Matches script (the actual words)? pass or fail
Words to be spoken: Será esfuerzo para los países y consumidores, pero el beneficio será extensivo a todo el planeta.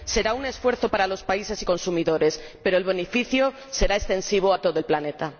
fail